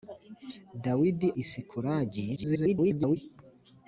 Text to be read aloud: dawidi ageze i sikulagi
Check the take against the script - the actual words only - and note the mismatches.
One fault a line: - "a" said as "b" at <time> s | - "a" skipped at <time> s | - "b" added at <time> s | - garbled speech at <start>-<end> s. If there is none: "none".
- "ageze" skipped at 1.3 s
- garbled speech at 2.4-3.2 s